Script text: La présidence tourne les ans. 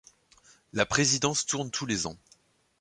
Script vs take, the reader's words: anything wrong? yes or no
yes